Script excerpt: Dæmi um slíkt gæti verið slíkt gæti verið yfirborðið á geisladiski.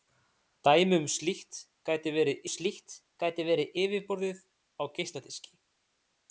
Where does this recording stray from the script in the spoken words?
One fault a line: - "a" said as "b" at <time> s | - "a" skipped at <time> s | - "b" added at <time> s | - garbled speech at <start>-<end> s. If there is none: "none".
none